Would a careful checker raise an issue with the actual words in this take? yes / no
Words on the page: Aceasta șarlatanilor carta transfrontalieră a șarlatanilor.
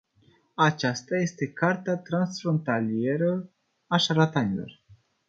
yes